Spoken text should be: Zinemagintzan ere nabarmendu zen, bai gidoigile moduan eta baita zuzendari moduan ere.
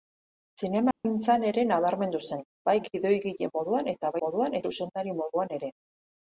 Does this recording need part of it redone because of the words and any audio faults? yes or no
yes